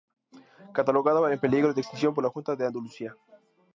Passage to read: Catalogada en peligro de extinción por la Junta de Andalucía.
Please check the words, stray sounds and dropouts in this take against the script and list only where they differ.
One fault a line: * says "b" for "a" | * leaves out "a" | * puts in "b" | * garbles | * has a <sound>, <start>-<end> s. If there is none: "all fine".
all fine